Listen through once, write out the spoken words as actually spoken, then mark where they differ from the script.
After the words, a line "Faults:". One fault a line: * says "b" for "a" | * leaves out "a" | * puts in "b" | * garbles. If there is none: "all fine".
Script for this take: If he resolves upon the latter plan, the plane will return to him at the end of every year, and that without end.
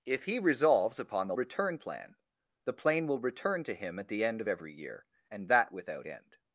If he resolves upon the return plan, the plane will return to him at the end of every year, and that without end.
Faults:
* says "return" for "latter"